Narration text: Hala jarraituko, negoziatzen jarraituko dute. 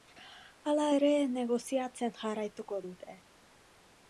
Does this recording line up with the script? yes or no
no